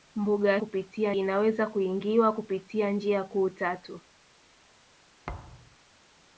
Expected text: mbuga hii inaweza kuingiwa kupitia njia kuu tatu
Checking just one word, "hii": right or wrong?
wrong